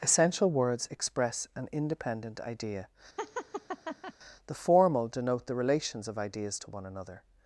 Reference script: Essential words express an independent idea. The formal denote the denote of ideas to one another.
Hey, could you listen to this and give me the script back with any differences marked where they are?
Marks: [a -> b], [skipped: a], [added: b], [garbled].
Essential words express an independent idea. The formal denote the [denote -> relations] of ideas to one another.